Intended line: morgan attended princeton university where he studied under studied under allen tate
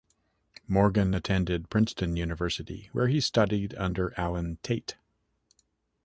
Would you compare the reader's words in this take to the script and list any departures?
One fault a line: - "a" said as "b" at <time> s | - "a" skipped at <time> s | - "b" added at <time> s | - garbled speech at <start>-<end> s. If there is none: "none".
- "studied under" skipped at 4.1 s